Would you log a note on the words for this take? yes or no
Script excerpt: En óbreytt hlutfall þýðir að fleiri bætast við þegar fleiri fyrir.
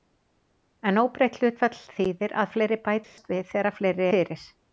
no